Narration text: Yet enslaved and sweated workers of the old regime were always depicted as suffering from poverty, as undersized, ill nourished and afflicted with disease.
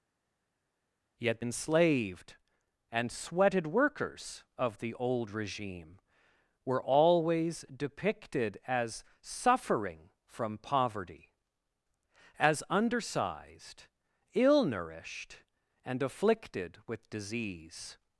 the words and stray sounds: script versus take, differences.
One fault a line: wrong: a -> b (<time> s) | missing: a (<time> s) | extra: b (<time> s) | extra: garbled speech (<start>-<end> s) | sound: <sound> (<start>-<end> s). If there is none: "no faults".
no faults